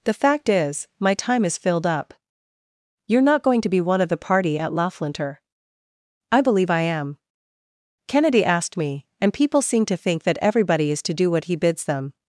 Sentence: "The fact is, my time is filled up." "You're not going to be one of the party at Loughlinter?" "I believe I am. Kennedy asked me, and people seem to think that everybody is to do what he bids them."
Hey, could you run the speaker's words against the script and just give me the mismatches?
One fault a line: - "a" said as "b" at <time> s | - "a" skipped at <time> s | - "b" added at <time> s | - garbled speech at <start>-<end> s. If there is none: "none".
none